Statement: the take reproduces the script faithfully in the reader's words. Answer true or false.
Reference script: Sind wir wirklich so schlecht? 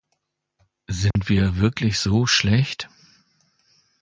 true